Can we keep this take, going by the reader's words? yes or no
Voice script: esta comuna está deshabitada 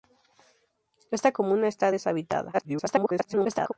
no